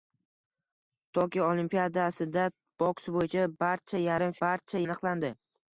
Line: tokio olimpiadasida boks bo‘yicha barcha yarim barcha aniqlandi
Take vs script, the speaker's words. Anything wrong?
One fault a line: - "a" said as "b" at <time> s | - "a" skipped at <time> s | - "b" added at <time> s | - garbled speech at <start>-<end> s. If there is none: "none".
none